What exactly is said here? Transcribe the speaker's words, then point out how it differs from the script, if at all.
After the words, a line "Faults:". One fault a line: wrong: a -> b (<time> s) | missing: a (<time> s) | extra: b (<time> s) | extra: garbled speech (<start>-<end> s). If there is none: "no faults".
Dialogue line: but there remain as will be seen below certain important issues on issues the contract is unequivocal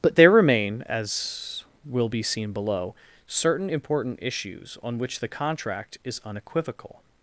but there remain as will be seen below certain important issues on which the contract is unequivocal
Faults:
wrong: issues -> which (5.0 s)